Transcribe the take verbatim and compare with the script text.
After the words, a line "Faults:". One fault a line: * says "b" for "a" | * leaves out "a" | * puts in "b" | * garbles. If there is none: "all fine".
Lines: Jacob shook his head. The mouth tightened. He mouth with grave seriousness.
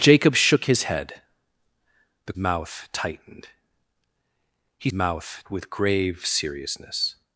Jacob shook his head. The mouth tightened. He mouth with grave seriousness.
Faults:
all fine